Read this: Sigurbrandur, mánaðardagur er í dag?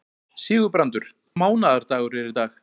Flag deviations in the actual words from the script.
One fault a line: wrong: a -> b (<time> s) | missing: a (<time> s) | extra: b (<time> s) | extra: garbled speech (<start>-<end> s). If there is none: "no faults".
no faults